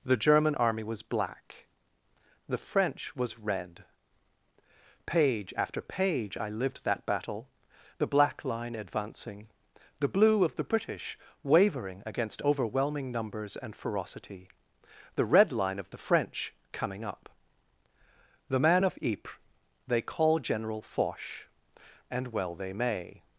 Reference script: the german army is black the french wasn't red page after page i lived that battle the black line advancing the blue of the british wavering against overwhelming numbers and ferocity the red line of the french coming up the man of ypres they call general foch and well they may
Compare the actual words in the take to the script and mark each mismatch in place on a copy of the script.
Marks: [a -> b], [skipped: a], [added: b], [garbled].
the german army [is -> was] black the french [wasn't -> was] red page after page i lived that battle the black line advancing the blue of the british wavering against overwhelming numbers and ferocity the red line of the french coming up the man of ypres they call general foch and well they may